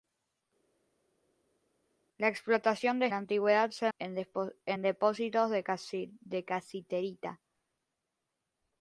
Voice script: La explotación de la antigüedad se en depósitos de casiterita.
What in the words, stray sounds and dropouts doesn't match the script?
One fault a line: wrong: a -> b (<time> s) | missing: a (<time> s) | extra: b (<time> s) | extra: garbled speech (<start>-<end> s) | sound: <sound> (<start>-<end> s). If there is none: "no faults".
no faults